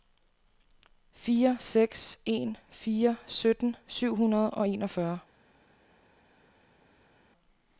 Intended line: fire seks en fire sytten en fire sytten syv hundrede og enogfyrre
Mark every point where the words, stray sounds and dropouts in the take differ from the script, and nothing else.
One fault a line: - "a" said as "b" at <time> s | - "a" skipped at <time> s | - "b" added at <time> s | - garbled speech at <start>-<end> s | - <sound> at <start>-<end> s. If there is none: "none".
- "en fire sytten" skipped at 3.8 s